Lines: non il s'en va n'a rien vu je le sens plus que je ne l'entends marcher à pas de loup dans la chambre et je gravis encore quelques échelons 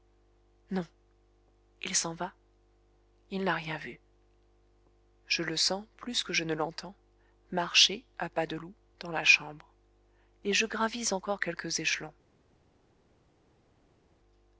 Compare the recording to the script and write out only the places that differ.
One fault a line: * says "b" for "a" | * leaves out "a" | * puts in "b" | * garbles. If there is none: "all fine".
* puts in "il"